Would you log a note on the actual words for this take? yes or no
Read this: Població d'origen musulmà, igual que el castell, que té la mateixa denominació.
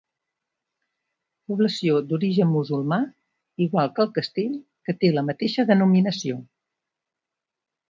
no